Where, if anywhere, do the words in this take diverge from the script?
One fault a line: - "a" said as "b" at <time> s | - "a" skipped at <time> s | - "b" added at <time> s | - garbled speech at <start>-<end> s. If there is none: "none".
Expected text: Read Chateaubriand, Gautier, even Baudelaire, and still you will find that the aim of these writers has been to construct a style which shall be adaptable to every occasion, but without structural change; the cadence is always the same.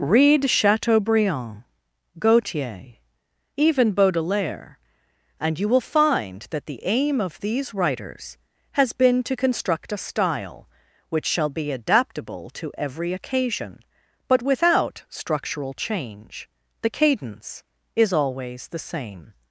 - "still" skipped at 5.6 s